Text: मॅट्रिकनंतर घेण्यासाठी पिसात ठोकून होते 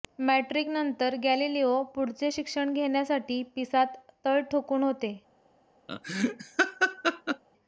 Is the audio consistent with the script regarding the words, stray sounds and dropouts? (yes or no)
no